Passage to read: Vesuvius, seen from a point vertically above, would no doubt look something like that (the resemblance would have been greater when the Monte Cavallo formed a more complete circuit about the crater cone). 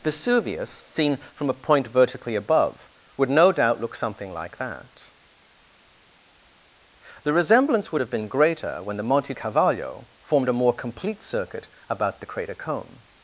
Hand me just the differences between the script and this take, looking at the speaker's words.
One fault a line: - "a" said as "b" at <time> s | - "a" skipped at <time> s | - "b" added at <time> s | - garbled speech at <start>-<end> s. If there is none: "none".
none